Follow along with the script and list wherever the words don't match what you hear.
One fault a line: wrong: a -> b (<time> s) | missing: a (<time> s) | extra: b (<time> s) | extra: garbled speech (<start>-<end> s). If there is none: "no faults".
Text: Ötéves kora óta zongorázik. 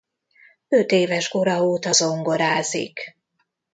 no faults